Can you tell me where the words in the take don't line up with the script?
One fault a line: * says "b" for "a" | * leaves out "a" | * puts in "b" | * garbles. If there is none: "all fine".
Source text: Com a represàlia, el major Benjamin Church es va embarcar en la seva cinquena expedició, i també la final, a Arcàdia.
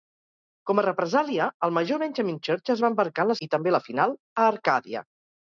* leaves out "seva cinquena expedició"